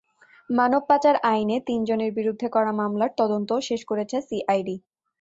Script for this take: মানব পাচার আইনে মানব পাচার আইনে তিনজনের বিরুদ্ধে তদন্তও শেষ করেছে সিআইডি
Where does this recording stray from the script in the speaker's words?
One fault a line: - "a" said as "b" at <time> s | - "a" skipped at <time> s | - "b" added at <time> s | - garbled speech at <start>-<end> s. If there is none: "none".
- "মানব পাচার আইনে তিনজনের বিরুদ্ধে" said as "তিনজনের বিরুদ্ধে করা মামলার" at 1.7 s